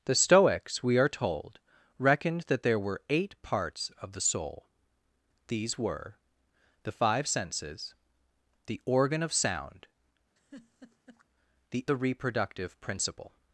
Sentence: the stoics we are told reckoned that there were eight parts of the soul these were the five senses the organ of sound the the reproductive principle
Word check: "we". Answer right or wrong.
right